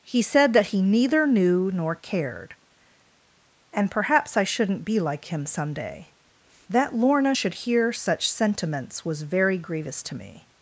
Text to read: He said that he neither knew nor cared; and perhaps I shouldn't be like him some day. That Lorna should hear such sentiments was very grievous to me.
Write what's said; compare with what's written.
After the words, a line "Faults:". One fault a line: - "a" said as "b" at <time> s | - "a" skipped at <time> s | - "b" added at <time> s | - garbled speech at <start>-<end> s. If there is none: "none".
He said that he neither knew nor cared; and perhaps I shouldn't be like him some day. That Lorna should hear such sentiments was very grievous to me.
Faults:
none